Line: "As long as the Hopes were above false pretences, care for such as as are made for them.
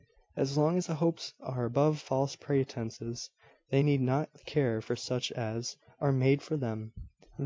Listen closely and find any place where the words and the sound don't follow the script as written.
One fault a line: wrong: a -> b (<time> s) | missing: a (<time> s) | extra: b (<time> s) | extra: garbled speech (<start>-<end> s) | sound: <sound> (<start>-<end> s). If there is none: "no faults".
wrong: were -> are (1.4 s)
extra: they need not (3.7 s)
missing: as (5.8 s)